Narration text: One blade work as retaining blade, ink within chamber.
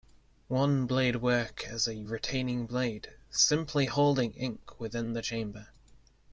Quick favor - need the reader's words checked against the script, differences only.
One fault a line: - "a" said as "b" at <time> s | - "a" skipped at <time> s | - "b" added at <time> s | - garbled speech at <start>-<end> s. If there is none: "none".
- "a" added at 1.9 s
- "simply holding" added at 3.3 s
- "the" added at 5.1 s